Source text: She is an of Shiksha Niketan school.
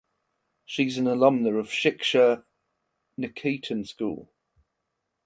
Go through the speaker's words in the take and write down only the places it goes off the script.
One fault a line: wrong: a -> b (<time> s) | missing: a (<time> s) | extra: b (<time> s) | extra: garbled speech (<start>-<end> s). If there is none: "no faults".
extra: alumna (1.1 s)